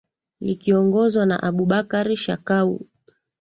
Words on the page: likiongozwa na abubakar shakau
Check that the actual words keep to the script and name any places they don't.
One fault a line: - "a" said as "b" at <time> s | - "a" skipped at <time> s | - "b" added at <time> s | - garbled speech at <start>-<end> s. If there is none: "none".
none